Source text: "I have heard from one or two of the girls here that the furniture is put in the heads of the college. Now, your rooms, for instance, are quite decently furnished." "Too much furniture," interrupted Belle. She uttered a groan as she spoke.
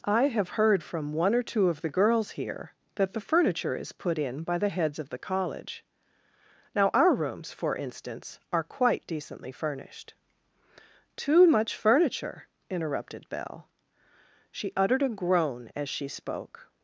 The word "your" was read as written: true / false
false